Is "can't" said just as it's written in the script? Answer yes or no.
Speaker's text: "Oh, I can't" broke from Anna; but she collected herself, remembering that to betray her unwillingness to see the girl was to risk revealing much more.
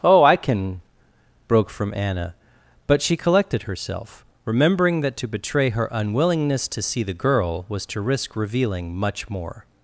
no